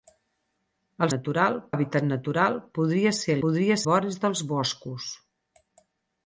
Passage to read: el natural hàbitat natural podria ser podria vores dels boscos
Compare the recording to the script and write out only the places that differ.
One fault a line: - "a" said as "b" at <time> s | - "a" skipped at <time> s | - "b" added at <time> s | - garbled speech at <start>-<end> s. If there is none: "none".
none